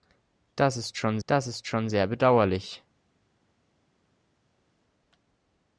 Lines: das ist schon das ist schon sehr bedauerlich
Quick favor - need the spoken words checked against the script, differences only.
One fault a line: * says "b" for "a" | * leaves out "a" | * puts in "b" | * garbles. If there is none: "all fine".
all fine